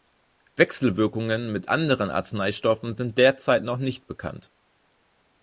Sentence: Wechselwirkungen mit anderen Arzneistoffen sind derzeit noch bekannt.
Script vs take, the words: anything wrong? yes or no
yes